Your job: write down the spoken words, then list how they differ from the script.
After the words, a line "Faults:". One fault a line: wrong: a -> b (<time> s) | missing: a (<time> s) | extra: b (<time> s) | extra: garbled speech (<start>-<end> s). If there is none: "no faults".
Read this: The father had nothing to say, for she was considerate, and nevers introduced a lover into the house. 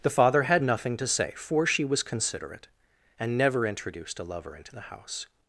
The father had nothing to say, for she was considerate, and never introduced a lover into the house.
Faults:
wrong: nevers -> never (3.4 s)